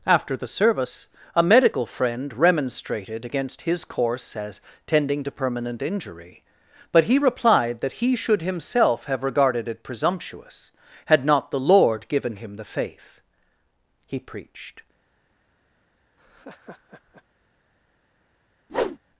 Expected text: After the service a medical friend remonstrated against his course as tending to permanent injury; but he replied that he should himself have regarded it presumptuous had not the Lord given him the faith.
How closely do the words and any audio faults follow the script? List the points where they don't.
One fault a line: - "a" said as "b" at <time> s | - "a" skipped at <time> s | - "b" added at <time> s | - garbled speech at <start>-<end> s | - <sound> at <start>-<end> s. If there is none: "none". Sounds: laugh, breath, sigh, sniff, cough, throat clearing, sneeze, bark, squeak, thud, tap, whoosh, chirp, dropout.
- "He preached" added at 14.1 s
- laugh at 16.2-17.2 s
- whoosh at 18.7-19.0 s